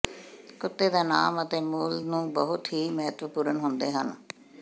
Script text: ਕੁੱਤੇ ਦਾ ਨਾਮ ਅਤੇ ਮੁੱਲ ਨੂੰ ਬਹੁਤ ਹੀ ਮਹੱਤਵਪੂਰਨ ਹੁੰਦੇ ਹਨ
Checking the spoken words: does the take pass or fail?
pass